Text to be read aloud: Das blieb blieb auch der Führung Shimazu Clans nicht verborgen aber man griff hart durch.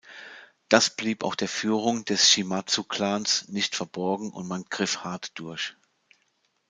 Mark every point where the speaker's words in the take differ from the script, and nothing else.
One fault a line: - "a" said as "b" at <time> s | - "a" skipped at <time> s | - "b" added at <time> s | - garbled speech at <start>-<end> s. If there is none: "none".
- "blieb" skipped at 1.2 s
- "des" added at 2.0 s
- "aber" said as "und" at 4.3 s